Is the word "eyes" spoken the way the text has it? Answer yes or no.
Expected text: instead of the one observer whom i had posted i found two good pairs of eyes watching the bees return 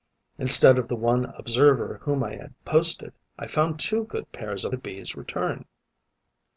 no